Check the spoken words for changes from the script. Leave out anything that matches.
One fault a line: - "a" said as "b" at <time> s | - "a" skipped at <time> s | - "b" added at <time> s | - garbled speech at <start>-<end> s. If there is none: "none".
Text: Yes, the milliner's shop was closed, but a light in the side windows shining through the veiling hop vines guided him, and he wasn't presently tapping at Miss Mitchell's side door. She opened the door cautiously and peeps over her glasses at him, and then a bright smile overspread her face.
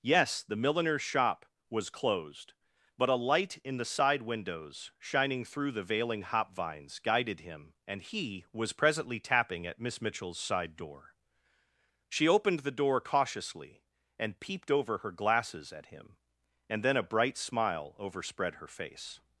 - "wasn't" said as "was" at 8.5 s
- "peeps" said as "peeped" at 14.4 s